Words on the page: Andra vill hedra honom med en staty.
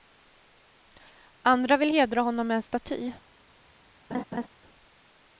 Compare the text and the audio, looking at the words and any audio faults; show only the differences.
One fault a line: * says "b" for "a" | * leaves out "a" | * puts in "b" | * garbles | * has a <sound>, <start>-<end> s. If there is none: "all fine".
* has a laugh, 4.1-4.5 s